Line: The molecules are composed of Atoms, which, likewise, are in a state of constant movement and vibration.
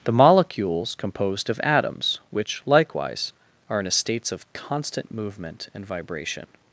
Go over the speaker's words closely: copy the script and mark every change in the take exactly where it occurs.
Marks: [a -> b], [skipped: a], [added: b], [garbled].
The molecules [skipped: are] composed of Atoms, which, likewise, are in a [state -> states] of constant movement and vibration.